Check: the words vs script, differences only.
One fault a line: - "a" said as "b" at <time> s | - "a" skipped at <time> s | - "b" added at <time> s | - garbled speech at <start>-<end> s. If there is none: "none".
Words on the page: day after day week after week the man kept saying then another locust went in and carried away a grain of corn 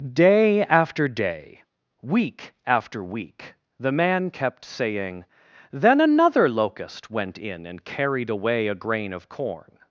none